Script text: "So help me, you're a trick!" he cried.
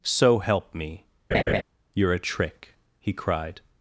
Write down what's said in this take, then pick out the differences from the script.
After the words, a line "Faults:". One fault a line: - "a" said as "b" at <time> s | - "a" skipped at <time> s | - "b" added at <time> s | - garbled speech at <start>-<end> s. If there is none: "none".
"So help me, you're a trick!" he cried.
Faults:
none